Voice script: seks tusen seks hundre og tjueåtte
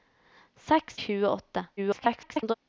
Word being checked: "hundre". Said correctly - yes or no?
no